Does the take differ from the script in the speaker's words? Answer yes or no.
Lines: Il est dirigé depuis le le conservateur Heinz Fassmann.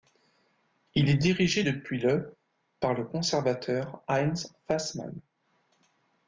yes